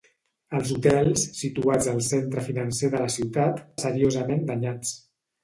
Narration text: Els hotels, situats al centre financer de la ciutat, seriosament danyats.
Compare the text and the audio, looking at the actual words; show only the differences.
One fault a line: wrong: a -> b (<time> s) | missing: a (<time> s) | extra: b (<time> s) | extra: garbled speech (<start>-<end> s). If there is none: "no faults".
no faults